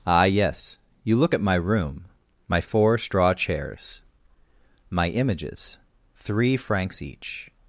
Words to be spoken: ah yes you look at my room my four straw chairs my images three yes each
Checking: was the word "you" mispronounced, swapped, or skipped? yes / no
no